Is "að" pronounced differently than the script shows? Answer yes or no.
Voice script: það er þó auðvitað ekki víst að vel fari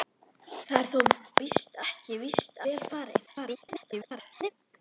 yes